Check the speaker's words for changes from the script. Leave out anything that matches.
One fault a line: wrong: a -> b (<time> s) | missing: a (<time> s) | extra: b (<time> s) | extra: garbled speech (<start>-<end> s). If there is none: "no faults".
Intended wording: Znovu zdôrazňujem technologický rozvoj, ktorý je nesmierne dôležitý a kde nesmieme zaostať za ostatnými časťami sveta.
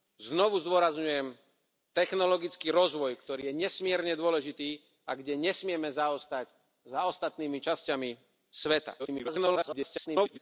extra: garbled speech (9.0-10.4 s)